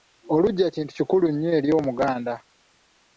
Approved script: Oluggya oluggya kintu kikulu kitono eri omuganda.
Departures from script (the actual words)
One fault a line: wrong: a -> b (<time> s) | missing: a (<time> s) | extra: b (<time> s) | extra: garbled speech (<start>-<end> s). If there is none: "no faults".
missing: oluggya (0.7 s)
wrong: kitono -> nnyo (1.3 s)